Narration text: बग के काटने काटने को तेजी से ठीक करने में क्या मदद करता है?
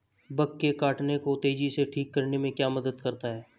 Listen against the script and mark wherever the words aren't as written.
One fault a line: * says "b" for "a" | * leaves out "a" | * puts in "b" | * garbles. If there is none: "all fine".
* leaves out "काटने"